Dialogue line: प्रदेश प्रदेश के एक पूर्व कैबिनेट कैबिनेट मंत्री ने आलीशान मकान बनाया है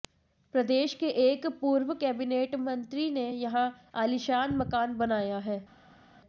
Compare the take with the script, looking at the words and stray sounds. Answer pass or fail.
fail